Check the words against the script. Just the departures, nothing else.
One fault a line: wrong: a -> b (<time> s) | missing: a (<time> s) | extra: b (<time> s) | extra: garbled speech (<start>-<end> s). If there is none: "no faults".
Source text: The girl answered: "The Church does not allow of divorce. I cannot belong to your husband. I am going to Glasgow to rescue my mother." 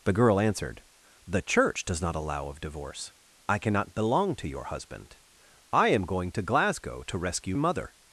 missing: my (7.5 s)